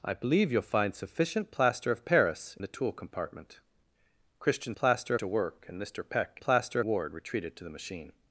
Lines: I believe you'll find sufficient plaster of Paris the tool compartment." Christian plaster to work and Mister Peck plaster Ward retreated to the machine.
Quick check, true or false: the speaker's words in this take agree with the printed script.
true